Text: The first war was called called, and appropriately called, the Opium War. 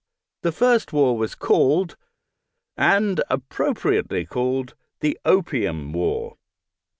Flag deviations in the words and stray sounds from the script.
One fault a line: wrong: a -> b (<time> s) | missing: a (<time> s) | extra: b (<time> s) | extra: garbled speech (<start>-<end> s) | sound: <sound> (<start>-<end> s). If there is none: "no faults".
missing: called (1.9 s)